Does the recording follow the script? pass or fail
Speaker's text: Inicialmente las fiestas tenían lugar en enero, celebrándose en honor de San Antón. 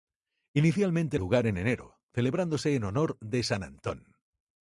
fail